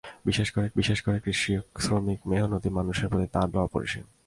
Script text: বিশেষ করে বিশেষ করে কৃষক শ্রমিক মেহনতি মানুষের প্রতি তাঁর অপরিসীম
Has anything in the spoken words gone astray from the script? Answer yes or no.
no